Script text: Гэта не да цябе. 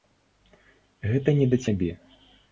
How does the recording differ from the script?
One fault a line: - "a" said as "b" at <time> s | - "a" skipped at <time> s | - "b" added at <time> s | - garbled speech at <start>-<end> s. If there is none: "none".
none